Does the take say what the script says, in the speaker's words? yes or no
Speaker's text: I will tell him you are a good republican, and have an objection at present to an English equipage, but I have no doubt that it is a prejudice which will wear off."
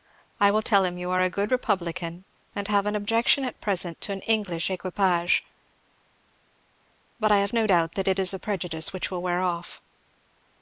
yes